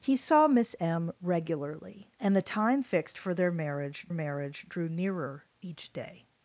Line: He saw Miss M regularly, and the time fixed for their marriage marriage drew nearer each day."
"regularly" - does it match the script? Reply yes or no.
yes